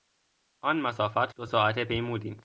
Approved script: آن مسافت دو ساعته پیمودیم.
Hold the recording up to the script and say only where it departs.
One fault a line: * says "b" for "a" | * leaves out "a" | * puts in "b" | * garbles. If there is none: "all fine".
all fine